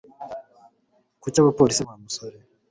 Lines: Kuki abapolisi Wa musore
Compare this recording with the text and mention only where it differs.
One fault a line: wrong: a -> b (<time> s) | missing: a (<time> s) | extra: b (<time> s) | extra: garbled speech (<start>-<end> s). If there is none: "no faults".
no faults